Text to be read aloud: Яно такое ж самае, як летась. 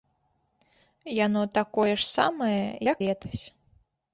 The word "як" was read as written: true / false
true